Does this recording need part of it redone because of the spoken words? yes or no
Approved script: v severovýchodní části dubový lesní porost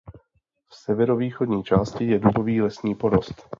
yes